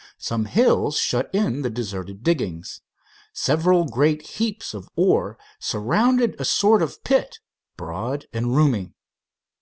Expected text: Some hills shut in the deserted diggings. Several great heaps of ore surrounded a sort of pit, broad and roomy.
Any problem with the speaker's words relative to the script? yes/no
no